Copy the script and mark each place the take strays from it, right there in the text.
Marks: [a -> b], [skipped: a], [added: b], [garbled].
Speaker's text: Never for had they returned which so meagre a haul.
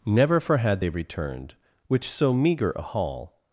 Never for had they returned which so meagre a haul.